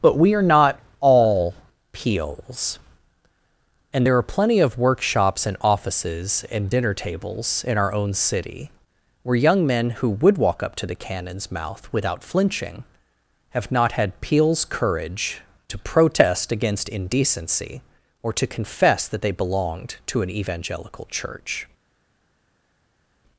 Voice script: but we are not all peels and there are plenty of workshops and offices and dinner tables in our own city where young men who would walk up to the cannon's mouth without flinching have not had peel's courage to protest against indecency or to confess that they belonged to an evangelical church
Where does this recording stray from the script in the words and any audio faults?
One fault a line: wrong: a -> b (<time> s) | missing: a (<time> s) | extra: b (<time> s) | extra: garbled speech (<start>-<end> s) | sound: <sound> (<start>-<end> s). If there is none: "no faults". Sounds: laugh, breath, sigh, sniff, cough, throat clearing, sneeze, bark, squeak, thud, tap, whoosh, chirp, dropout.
no faults